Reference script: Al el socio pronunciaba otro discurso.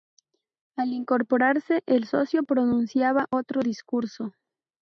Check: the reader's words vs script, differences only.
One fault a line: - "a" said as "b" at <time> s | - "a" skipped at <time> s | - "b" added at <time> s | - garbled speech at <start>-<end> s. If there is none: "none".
- "incorporarse" added at 0.9 s